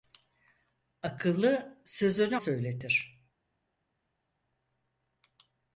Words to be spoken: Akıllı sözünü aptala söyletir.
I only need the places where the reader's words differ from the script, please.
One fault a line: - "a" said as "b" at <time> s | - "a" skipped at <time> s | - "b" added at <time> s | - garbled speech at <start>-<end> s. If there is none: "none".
- "aptala" skipped at 2.4 s